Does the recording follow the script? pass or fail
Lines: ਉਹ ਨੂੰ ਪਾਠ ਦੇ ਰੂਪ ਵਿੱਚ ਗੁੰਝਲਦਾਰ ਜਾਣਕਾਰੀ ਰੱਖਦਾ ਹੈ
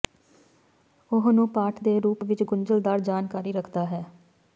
pass